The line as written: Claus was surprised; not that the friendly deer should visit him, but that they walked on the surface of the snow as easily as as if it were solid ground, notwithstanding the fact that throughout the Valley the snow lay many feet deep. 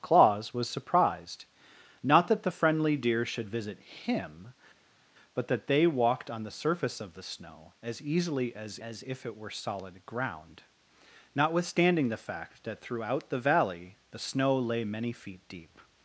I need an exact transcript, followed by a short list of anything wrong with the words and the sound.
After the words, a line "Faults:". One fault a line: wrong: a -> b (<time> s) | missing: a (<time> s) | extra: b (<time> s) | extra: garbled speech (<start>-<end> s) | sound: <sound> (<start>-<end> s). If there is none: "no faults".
Claus was surprised; not that the friendly deer should visit him, but that they walked on the surface of the snow as easily as as if it were solid ground, notwithstanding the fact that throughout the Valley the snow lay many feet deep.
Faults:
no faults